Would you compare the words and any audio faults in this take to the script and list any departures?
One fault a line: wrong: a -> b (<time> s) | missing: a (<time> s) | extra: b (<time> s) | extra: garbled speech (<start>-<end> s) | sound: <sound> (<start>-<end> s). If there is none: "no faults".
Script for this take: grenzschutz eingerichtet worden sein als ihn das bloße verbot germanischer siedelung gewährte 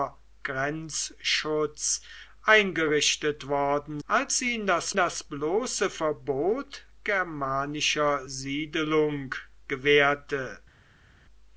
missing: sein (4.0 s)
extra: das (4.9 s)